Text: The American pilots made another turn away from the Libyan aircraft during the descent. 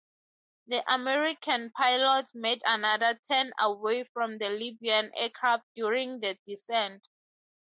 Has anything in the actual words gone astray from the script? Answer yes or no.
no